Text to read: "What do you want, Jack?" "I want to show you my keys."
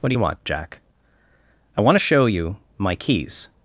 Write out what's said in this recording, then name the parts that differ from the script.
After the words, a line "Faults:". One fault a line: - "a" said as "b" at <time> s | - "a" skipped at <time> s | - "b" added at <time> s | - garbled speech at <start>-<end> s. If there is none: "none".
"What do you want, Jack?" "I want to show you my keys."
Faults:
none